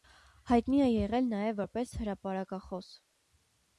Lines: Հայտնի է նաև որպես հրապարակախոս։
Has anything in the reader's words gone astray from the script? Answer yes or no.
yes